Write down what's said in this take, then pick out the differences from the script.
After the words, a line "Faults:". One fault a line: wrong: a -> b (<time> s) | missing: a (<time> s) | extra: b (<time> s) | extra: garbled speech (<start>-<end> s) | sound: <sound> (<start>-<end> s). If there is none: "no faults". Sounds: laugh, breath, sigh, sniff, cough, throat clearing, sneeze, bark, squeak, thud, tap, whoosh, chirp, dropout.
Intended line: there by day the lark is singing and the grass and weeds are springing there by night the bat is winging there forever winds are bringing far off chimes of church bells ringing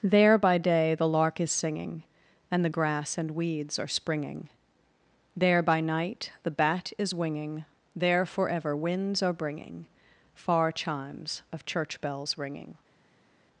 there by day the lark is singing and the grass and weeds are springing there by night the bat is winging there forever winds are bringing far chimes of church bells ringing
Faults:
missing: off (10.7 s)